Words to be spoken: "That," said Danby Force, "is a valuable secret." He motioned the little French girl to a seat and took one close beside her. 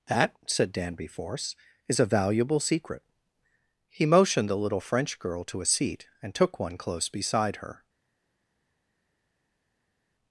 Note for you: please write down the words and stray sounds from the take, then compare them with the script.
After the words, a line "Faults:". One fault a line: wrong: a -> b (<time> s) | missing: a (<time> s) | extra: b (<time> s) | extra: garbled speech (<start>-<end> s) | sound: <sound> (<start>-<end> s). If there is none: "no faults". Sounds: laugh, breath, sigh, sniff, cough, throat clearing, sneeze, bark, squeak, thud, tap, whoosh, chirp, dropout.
"That," said Danby Force, "is a valuable secret." He motioned the little French girl to a seat and took one close beside her.
Faults:
no faults